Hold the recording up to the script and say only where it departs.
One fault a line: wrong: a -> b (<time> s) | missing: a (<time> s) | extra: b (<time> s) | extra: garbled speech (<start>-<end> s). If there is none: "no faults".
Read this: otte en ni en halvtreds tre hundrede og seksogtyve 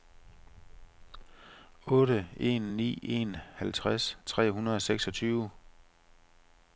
no faults